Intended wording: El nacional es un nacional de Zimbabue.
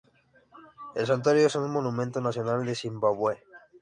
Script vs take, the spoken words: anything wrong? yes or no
yes